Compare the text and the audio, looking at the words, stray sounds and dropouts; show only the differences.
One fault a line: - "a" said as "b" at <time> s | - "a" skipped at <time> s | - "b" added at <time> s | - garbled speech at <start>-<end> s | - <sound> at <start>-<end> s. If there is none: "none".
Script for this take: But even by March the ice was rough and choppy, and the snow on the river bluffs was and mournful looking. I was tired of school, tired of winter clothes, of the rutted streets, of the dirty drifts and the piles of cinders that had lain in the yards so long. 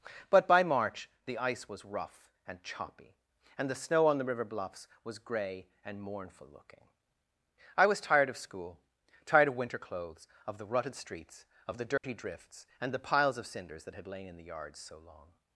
- "even" skipped at 0.5 s
- "gray" added at 5.2 s
- dropout at 12.0-12.0 s